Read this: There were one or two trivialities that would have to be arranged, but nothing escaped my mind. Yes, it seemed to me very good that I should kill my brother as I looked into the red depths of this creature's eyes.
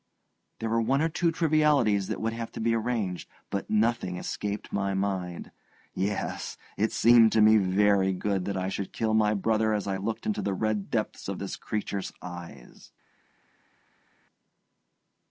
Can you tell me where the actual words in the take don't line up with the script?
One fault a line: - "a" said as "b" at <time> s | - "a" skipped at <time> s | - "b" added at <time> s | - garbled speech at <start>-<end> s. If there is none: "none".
none